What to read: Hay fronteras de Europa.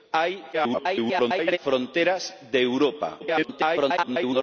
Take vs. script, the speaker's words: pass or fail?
fail